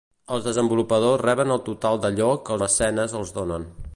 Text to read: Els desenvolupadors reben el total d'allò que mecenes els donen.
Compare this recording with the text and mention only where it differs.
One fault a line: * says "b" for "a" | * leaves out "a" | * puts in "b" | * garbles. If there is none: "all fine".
all fine